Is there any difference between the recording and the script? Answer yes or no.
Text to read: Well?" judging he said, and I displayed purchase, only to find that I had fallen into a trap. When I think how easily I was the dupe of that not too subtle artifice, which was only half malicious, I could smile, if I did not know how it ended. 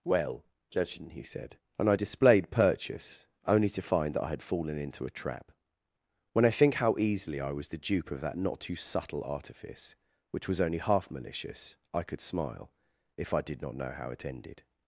no